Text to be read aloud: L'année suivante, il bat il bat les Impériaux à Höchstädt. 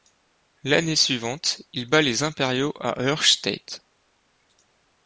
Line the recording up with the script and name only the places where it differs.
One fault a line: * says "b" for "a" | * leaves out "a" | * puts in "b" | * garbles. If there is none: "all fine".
* leaves out "il bat"